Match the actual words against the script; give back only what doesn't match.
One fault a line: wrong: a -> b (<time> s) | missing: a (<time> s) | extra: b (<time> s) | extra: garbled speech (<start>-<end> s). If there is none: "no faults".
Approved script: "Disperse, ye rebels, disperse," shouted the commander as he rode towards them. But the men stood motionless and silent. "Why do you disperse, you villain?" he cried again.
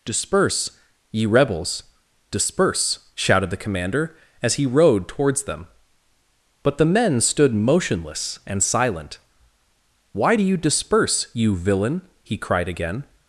no faults